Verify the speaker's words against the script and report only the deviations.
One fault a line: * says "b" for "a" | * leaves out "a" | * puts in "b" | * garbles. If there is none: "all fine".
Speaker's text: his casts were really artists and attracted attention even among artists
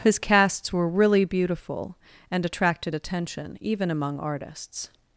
* says "beautiful" for "artists"